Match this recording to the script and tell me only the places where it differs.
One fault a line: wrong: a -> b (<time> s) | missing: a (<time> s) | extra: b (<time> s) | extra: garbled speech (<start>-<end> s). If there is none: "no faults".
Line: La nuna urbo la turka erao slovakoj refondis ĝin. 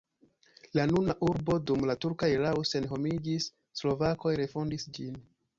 extra: dum (1.7 s)
extra: senhomiĝis (2.7 s)